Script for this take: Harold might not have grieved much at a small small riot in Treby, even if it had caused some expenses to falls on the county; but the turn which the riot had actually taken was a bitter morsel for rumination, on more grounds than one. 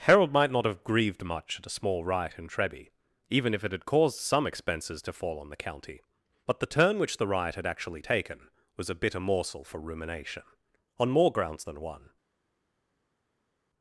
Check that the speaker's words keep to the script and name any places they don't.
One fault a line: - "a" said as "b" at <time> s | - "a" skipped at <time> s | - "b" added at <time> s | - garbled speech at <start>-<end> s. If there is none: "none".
- "small" skipped at 2.0 s
- "falls" said as "fall" at 5.1 s